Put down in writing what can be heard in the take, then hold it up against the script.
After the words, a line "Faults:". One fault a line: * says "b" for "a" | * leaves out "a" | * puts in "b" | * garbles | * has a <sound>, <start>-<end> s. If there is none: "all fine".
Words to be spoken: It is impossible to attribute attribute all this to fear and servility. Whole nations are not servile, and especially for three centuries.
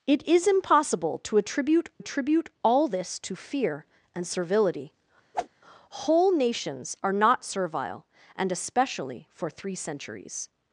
It is impossible to attribute attribute all this to fear and servility. Whole nations are not servile, and especially for three centuries.
Faults:
* has a whoosh, 5.3-5.5 s